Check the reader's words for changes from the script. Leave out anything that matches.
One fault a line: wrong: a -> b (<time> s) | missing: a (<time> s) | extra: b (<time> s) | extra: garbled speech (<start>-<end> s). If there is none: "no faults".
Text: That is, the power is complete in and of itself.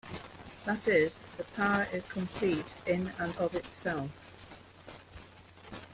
no faults